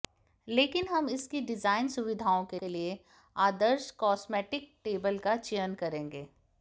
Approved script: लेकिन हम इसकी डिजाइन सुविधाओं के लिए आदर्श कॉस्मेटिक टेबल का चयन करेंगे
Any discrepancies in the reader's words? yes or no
yes